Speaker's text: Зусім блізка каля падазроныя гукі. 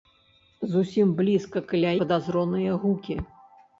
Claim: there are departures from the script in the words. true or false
false